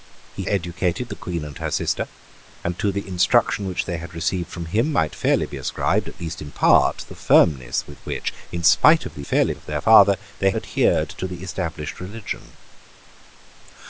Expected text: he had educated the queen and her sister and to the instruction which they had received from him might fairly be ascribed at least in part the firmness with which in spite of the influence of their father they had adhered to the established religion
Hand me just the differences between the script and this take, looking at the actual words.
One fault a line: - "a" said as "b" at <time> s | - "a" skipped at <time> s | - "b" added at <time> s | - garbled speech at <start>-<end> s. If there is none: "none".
- "had" skipped at 0.5 s
- "influence" said as "fairly" at 9.2 s
- "had" skipped at 10.5 s